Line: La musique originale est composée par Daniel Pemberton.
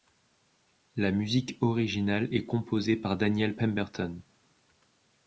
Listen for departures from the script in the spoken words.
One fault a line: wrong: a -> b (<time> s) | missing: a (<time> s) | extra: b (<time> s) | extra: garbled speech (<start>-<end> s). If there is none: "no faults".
no faults